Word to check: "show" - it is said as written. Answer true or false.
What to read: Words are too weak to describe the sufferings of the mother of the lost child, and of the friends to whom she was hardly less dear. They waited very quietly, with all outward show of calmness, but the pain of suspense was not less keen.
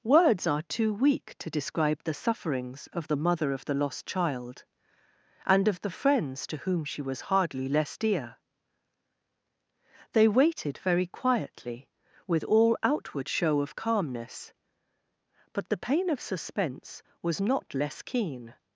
true